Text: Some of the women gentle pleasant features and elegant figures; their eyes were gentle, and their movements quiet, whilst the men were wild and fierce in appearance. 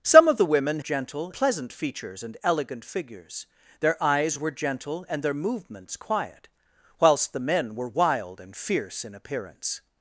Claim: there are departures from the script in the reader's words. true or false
false